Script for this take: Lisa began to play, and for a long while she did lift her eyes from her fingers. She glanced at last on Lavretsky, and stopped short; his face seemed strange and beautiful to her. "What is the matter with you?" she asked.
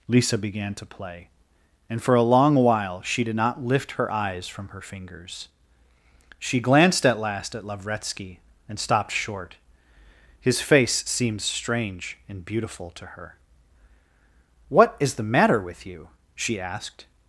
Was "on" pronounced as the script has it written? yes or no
no